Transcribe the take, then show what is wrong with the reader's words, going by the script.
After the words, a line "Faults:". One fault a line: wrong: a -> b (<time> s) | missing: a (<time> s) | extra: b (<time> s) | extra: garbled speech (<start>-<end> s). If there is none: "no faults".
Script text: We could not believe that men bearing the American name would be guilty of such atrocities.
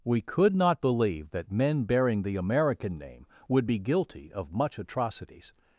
We could not believe that men bearing the American name would be guilty of much atrocities.
Faults:
wrong: such -> much (4.5 s)